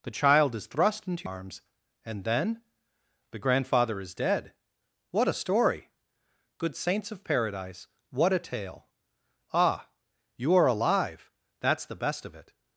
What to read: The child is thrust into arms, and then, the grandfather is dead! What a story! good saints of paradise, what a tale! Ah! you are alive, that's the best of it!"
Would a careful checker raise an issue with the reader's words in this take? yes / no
no